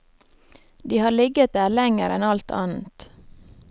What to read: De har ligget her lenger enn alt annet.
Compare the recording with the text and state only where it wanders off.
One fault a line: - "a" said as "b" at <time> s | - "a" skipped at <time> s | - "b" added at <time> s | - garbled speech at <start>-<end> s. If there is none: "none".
- "her" said as "der" at 1.6 s